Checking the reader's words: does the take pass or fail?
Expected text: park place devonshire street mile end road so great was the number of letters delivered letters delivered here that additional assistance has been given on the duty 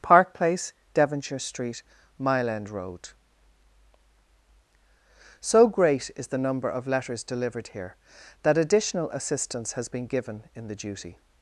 fail